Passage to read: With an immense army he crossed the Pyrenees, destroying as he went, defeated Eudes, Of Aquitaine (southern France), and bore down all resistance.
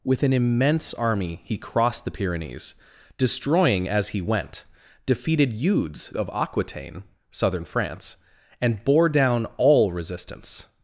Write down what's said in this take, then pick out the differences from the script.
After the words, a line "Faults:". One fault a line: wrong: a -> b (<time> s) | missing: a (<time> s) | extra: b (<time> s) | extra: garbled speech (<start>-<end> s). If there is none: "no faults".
With an immense army he crossed the Pyrenees, destroying as he went, defeated Eudes, Of Aquitaine (southern France), and bore down all resistance.
Faults:
no faults